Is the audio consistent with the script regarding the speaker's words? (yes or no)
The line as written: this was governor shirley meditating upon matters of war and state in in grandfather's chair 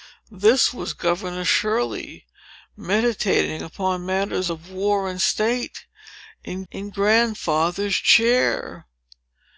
yes